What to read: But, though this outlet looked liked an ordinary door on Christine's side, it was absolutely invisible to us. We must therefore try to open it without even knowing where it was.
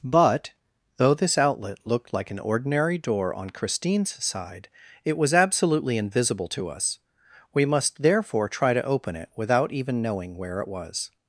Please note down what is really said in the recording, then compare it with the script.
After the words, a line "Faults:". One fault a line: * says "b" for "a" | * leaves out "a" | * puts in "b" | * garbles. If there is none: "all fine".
But, though this outlet looked like an ordinary door on Christine's side, it was absolutely invisible to us. We must therefore try to open it without even knowing where it was.
Faults:
* says "like" for "liked"